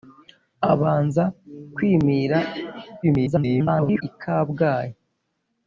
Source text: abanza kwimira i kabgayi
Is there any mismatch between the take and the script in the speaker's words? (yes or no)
yes